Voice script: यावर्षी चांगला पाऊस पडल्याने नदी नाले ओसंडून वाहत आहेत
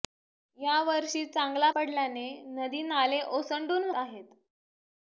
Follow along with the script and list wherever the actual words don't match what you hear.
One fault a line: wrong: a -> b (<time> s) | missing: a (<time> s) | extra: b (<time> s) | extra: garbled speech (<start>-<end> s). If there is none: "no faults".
missing: पाऊस (1.7 s)
missing: वाहत (3.9 s)